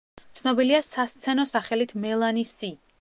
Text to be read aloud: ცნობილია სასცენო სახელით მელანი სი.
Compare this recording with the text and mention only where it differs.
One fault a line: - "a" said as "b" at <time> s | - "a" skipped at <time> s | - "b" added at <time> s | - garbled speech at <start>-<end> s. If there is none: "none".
none